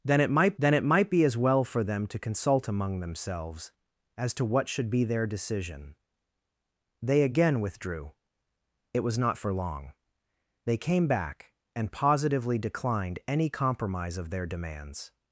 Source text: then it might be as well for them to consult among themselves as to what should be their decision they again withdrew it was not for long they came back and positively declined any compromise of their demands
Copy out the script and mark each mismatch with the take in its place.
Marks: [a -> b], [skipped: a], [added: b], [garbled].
then it might [added: then it might] be as well for them to consult among themselves as to what should be their decision they again withdrew it was not for long they came back and positively declined any compromise of their demands